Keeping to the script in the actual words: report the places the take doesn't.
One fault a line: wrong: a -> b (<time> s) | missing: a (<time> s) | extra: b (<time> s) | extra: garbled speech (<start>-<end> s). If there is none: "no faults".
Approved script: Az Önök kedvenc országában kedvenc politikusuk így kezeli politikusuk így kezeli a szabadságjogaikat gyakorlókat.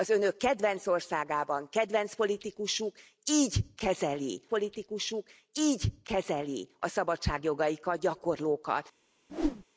no faults